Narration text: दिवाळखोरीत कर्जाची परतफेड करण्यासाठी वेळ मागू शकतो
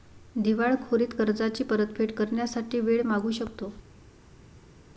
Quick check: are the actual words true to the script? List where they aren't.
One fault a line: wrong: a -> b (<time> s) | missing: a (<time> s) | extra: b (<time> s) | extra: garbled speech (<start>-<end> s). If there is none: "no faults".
no faults